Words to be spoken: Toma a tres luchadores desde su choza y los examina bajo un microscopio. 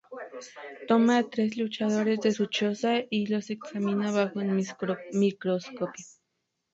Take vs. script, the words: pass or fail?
fail